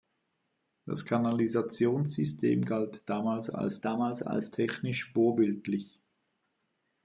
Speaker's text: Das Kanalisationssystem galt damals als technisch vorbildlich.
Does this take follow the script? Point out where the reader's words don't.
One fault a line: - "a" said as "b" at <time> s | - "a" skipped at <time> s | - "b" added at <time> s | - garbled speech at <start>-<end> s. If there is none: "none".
- "damals als" added at 3.8 s